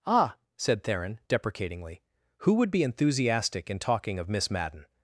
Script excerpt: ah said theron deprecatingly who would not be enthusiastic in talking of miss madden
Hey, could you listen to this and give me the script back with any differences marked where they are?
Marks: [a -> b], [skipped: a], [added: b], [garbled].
ah said theron deprecatingly who would [skipped: not] be enthusiastic in talking of miss madden